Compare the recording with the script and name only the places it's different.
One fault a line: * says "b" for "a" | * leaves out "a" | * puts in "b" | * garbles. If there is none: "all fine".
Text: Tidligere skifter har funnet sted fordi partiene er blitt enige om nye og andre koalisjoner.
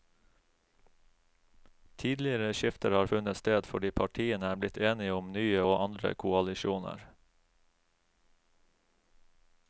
all fine